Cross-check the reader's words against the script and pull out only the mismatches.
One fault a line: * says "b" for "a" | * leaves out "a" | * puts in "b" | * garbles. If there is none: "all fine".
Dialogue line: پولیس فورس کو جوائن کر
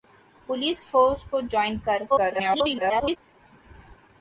* garbles